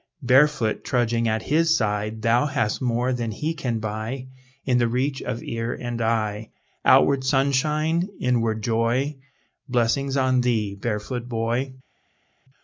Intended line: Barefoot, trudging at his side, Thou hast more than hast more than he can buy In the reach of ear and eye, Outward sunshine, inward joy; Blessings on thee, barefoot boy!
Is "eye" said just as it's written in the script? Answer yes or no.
yes